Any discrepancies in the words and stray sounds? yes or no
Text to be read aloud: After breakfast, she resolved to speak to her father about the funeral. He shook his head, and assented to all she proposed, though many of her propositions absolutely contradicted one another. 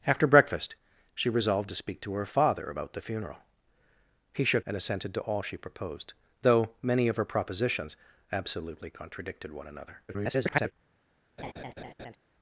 yes